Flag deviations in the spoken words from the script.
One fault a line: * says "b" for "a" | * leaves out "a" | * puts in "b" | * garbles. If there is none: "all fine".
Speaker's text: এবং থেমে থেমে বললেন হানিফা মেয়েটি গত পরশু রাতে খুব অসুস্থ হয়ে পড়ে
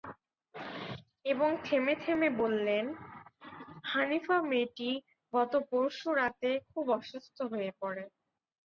all fine